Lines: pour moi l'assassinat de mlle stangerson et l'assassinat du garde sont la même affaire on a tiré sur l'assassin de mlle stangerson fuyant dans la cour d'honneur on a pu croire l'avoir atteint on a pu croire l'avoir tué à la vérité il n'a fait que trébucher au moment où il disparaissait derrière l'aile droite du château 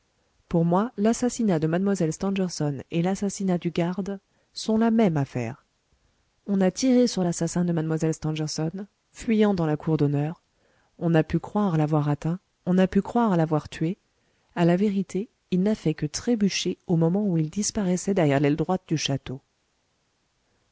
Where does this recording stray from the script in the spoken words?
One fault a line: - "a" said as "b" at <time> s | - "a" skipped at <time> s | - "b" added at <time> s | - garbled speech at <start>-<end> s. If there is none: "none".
none